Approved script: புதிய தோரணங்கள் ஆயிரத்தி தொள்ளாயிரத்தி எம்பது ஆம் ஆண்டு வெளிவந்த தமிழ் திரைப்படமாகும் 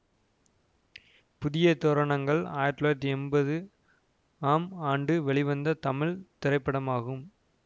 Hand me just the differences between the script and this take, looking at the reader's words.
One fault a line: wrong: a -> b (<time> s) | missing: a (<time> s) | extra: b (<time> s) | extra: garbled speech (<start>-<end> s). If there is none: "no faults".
no faults